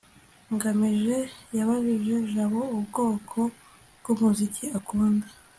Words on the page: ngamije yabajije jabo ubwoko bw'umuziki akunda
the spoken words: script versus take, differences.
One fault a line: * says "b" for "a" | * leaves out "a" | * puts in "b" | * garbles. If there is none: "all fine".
all fine